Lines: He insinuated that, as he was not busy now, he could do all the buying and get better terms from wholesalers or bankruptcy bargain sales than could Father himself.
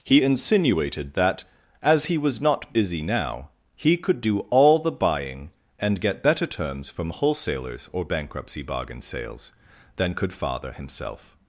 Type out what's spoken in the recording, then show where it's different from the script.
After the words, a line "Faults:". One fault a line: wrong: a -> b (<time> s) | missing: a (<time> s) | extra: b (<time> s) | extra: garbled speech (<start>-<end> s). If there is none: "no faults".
He insinuated that, as he was not busy now, he could do all the buying and get better terms from wholesalers or bankruptcy bargain sales than could Father himself.
Faults:
no faults